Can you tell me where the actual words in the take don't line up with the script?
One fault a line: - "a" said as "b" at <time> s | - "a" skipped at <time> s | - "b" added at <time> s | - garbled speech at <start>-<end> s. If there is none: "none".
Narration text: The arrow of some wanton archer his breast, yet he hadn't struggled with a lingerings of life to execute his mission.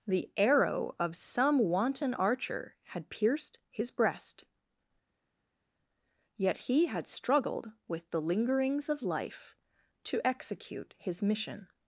- "had pierced" added at 2.9 s
- "hadn't" said as "had" at 6.9 s
- "a" said as "the" at 8.1 s